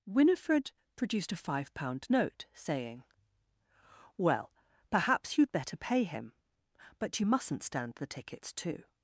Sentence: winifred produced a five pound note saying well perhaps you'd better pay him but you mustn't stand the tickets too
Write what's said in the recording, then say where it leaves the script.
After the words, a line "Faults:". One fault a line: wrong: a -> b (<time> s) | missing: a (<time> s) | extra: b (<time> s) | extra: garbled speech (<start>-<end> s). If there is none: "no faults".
winifred produced a five pound note saying well perhaps you'd better pay him but you mustn't stand the tickets too
Faults:
no faults